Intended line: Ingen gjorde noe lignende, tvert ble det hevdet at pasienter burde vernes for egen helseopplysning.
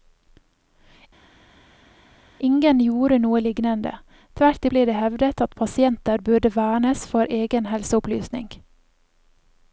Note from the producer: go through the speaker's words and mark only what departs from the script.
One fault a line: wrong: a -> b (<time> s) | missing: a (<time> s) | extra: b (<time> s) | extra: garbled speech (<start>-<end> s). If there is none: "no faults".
no faults